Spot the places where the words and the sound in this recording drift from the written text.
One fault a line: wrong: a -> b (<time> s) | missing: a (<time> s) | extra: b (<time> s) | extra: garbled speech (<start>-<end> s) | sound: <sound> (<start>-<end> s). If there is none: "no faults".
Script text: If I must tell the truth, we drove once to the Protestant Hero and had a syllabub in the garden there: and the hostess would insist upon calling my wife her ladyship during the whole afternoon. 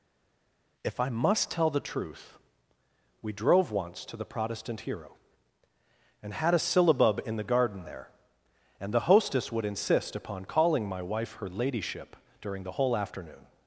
no faults